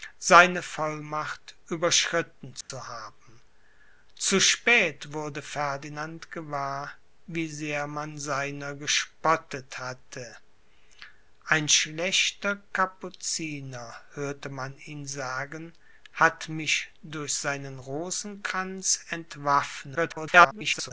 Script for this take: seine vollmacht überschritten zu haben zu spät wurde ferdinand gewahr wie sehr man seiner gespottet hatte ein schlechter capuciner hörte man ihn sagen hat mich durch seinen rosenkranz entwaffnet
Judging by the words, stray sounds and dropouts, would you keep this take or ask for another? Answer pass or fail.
fail